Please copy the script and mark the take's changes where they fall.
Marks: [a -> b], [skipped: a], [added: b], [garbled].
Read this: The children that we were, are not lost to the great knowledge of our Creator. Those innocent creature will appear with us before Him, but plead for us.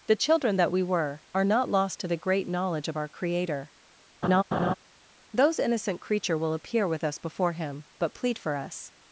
The children that we were, are not lost to the great knowledge of our Creator. Those innocent creature will appear with us before Him, but plead for us.